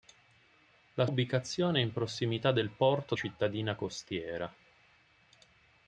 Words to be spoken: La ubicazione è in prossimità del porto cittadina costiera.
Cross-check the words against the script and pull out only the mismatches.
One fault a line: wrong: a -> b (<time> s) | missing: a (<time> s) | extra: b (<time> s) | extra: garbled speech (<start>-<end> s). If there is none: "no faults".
no faults